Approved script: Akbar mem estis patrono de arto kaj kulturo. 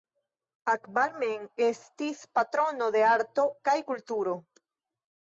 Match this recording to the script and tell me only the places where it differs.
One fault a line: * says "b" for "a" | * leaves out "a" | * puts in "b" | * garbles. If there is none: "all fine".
all fine